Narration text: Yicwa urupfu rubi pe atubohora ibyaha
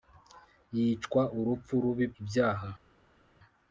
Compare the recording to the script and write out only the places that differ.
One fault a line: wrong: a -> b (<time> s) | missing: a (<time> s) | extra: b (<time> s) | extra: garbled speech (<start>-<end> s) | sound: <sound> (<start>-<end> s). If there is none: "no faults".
missing: pe atubohora (2.1 s)